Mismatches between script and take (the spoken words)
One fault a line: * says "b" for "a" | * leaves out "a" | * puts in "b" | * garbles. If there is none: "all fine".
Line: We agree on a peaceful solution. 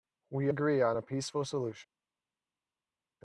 all fine